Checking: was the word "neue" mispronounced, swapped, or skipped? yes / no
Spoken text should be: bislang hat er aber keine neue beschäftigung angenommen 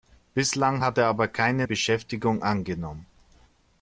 yes